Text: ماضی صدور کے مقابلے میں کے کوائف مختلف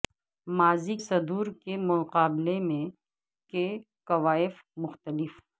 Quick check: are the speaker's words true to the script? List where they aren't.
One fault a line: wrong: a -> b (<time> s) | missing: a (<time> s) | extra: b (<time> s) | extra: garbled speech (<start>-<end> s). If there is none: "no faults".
no faults